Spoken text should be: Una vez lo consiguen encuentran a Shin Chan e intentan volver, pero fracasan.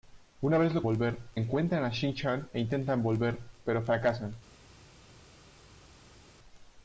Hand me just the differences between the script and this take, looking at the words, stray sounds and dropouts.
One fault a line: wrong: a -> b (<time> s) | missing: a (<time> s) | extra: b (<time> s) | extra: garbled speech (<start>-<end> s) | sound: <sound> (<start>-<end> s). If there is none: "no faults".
wrong: consiguen -> volver (0.8 s)